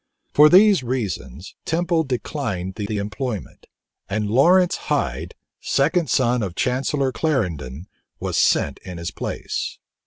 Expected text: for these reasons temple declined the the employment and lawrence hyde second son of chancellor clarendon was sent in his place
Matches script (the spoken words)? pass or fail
pass